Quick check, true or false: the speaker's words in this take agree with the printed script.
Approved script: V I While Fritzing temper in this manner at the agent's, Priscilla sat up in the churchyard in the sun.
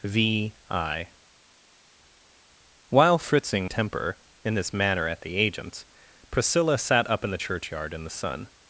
true